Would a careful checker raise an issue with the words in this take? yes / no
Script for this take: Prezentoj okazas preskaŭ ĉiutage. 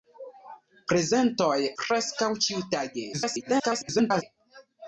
yes